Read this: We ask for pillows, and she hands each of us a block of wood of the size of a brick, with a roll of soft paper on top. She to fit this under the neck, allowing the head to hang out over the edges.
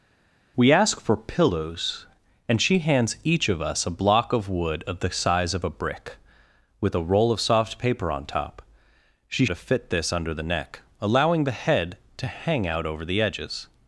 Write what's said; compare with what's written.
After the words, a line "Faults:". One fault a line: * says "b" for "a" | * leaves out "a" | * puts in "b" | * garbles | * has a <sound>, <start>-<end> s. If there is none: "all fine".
We ask for pillows, and she hands each of us a block of wood of the size of a brick, with a roll of soft paper on top. She to fit this under the neck, allowing the head to hang out over the edges.
Faults:
all fine